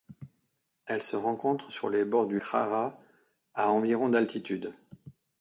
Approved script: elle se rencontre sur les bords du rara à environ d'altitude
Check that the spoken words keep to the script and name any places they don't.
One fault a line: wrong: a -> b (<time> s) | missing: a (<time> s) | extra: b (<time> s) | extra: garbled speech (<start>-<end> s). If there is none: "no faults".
no faults